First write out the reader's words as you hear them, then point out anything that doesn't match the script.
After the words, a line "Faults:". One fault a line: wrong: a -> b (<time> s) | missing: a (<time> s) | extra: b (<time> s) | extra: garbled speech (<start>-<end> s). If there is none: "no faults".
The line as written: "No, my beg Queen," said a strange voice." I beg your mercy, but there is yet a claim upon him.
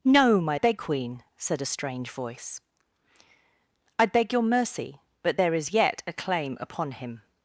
"No, my beg Queen," said a strange voice." I beg your mercy, but there is yet a claim upon him.
Faults:
no faults